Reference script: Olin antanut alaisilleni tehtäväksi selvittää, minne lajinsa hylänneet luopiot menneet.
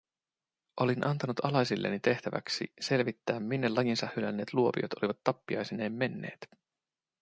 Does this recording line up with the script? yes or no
no